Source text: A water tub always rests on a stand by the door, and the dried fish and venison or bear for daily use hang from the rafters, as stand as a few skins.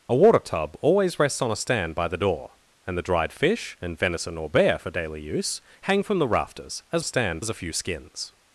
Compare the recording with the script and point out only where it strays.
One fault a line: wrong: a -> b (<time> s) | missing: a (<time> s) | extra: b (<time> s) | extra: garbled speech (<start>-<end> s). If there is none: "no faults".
no faults